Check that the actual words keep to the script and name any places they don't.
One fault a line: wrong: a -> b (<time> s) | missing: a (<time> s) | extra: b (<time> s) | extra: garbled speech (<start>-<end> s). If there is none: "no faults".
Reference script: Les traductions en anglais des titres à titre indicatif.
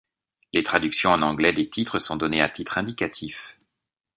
extra: sont données (2.0 s)